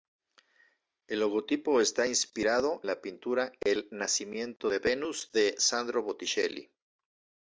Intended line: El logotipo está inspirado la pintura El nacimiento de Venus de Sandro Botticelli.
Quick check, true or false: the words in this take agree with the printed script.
true